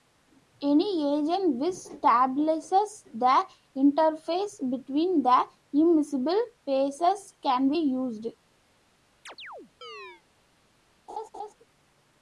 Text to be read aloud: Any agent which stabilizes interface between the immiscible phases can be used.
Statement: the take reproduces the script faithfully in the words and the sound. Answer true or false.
false